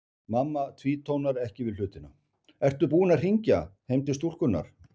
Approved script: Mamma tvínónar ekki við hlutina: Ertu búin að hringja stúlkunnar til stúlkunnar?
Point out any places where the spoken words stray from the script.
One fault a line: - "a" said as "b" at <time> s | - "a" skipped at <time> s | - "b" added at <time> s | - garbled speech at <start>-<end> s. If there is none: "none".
- "stúlkunnar" said as "heim" at 3.9 s